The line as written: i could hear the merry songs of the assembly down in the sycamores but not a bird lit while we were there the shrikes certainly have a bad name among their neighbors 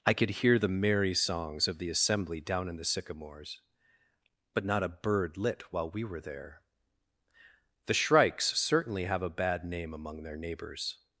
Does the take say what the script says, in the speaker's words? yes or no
yes